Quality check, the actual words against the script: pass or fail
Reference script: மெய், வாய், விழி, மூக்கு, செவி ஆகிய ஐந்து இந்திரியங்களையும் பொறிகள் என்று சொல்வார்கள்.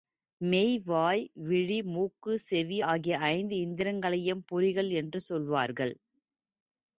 pass